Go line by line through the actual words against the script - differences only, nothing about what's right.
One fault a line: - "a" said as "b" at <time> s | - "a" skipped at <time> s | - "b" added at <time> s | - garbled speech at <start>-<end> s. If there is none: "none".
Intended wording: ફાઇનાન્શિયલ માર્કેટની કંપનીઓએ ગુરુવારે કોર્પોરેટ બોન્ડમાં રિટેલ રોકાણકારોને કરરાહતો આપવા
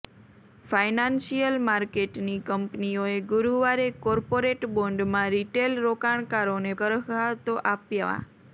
none